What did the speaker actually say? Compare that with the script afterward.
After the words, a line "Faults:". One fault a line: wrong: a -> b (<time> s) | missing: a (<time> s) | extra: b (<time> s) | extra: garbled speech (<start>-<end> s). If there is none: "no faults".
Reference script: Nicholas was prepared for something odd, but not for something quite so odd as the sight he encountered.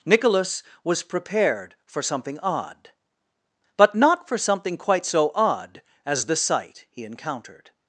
Nicholas was prepared for something odd, but not for something quite so odd as the sight he encountered.
Faults:
no faults